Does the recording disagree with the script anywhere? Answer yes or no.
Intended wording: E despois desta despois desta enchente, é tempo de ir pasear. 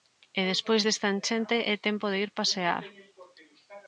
yes